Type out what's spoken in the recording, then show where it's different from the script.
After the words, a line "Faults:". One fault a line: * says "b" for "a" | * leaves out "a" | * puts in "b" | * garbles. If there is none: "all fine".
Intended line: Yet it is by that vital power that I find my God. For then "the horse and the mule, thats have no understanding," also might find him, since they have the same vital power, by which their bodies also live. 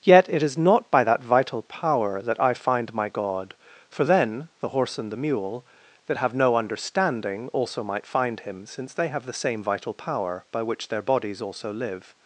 Yet it is not by that vital power that I find my God. For then "the horse and the mule, that have no understanding," also might find him, since they have the same vital power, by which their bodies also live.
Faults:
* puts in "not"
* says "that" for "thats"